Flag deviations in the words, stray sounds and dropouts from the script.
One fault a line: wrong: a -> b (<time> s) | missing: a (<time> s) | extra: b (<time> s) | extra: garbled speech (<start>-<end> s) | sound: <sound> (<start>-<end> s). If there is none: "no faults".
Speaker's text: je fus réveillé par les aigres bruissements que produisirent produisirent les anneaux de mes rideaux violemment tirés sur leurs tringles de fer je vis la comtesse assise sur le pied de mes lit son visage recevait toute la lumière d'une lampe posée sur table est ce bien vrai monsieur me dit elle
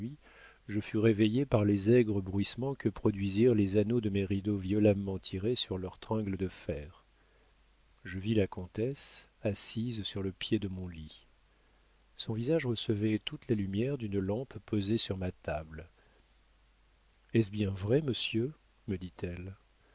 missing: produisirent (3.5 s)
wrong: mes -> mon (10.7 s)
extra: ma (15.2 s)